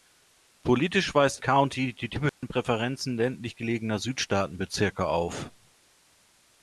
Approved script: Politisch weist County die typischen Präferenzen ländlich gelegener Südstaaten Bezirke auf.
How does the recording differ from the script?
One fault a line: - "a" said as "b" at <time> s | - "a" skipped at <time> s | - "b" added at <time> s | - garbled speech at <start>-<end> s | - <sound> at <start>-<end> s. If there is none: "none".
- dropout at 2.3-2.4 s